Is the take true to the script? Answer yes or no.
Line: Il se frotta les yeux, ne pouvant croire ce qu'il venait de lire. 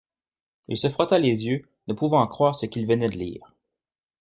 yes